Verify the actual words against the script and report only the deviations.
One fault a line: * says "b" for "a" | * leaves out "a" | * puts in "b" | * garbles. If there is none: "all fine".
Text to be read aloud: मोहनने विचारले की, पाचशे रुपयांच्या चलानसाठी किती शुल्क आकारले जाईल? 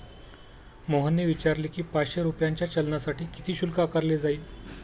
all fine